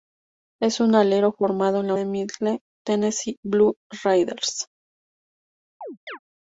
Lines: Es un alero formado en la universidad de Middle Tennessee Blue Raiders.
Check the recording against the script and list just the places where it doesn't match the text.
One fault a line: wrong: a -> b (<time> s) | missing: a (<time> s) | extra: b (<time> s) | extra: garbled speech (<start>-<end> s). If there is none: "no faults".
missing: universidad (1.9 s)